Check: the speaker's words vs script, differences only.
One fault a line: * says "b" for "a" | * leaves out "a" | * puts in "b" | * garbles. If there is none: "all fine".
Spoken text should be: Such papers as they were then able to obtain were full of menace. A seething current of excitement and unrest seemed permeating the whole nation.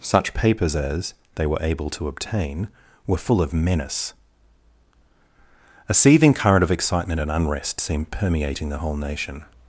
* leaves out "then"